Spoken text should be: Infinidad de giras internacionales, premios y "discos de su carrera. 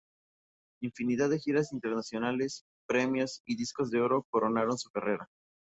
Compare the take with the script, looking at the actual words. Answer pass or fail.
fail